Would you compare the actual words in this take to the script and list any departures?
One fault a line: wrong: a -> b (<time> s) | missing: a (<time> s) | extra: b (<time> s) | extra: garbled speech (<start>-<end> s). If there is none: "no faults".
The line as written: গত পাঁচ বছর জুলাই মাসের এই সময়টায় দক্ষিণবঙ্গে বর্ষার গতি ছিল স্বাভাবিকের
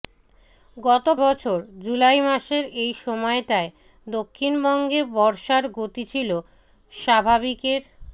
missing: পাঁচ (1.1 s)